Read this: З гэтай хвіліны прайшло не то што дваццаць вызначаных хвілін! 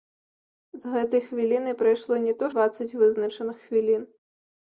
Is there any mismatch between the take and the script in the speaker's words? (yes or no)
yes